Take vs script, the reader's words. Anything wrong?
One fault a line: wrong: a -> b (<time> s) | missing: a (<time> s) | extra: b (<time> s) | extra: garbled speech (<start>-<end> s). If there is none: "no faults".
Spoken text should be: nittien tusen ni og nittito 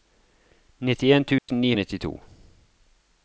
no faults